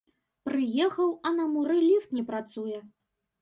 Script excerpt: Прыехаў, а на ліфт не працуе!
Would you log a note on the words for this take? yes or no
yes